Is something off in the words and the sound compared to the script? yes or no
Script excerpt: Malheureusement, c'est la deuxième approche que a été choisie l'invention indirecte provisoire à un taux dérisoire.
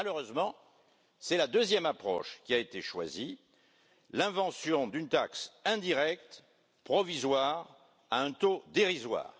yes